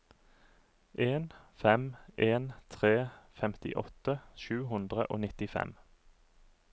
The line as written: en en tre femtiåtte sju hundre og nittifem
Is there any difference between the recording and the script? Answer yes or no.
yes